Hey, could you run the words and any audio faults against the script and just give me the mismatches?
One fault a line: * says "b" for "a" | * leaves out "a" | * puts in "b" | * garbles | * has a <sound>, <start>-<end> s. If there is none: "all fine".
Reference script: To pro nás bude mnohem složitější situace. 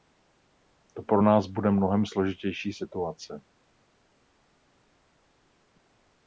all fine